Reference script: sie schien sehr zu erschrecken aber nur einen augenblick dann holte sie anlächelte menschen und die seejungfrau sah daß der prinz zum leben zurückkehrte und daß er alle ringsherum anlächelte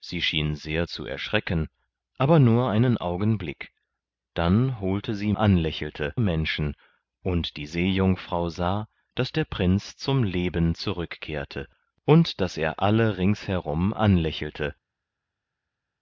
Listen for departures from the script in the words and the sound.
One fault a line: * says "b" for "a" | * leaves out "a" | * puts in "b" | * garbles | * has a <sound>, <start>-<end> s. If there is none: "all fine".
all fine